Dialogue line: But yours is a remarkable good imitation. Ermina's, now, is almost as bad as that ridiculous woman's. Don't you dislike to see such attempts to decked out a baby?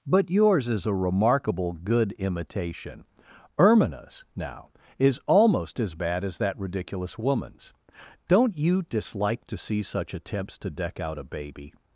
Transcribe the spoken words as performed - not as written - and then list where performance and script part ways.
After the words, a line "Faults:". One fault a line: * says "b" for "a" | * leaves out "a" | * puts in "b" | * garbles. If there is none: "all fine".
But yours is a remarkable good imitation. Ermina's, now, is almost as bad as that ridiculous woman's. Don't you dislike to see such attempts to deck out a baby?
Faults:
* says "deck" for "decked"